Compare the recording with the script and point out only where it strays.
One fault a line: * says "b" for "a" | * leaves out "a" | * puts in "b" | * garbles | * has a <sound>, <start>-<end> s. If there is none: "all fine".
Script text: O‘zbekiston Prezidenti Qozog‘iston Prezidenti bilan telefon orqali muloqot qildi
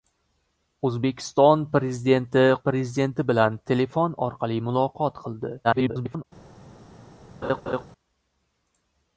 * leaves out "Qozog‘iston"
* garbles
* has a laugh, 7.4-7.8 s